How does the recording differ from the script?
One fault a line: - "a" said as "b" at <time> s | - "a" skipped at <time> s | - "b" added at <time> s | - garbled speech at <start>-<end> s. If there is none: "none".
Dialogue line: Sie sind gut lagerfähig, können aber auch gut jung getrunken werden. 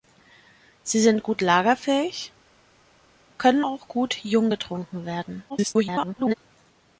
- "aber" skipped at 3.6 s
- garbled speech at 5.5-6.3 s